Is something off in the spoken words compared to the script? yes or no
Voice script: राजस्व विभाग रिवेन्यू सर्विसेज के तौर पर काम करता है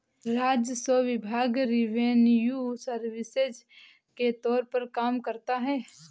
no